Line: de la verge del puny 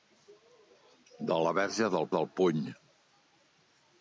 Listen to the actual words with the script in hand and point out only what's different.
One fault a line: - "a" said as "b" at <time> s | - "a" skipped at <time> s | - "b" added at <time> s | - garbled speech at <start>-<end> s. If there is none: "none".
- "del" added at 2.2 s